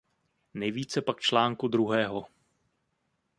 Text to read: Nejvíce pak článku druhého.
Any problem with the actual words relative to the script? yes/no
no